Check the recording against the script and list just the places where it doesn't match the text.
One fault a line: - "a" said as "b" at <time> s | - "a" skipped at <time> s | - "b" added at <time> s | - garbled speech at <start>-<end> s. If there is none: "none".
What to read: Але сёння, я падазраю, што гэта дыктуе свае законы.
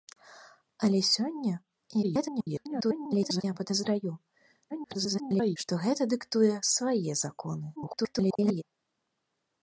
- garbled speech at 2.0-3.4 s
- garbled speech at 4.7-5.6 s
- garbled speech at 7.8-8.6 s